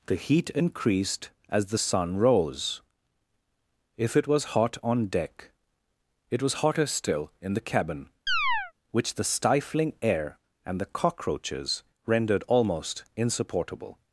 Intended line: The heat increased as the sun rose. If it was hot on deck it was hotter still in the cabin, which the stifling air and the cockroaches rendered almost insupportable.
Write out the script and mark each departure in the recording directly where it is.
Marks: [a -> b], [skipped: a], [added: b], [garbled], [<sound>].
The heat increased as the sun rose. If it was hot on deck it was hotter still in the cabin, [chirp] which the stifling air and the cockroaches rendered almost insupportable.